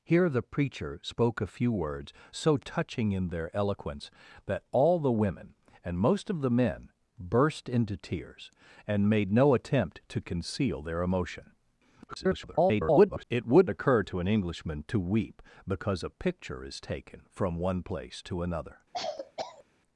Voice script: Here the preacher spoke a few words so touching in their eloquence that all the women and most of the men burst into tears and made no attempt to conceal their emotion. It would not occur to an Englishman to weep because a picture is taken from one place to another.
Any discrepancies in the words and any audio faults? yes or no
yes